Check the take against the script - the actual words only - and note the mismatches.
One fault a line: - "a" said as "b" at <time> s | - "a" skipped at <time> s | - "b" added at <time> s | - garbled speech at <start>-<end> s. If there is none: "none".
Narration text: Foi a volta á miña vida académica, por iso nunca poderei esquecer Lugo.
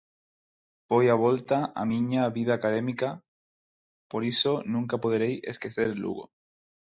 none